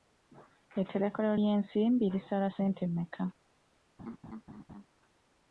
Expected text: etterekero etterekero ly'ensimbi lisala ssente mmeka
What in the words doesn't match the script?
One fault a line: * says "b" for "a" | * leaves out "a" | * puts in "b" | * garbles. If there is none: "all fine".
* leaves out "etterekero"